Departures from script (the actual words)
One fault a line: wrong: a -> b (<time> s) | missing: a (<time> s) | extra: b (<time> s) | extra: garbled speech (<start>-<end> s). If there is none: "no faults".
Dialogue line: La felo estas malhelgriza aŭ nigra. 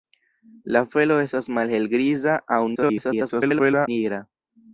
extra: garbled speech (2.7-3.9 s)